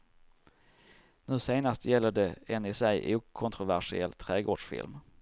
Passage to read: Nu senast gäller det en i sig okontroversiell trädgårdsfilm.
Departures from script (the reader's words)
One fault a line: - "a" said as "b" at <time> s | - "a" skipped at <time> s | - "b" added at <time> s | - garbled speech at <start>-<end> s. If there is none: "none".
none